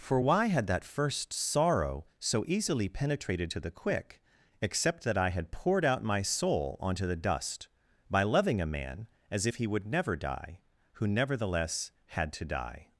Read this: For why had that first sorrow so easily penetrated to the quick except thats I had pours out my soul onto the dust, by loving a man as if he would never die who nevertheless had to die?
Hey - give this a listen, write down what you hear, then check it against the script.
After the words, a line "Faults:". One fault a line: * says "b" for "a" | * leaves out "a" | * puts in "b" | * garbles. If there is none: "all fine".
For why had that first sorrow so easily penetrated to the quick except that I had poured out my soul onto the dust, by loving a man as if he would never die who nevertheless had to die?
Faults:
* says "that" for "thats"
* says "poured" for "pours"